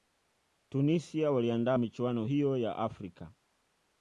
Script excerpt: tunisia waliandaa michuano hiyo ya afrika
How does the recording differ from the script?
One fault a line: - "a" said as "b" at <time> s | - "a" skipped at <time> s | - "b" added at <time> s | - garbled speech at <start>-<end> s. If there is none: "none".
none